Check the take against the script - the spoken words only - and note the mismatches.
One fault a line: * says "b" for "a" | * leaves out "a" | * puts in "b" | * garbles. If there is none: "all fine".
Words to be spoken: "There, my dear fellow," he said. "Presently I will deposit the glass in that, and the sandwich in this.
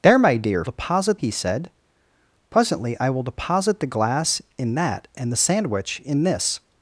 * says "deposit" for "fellow"